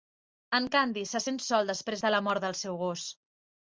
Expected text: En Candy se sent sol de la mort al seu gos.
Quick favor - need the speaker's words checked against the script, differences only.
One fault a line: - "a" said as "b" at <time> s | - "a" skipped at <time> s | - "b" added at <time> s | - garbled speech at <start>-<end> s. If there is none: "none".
- "després" added at 1.7 s
- "al" said as "del" at 2.5 s